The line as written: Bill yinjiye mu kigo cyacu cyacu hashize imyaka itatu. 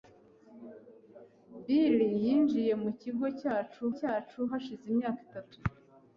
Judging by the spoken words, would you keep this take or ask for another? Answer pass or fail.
pass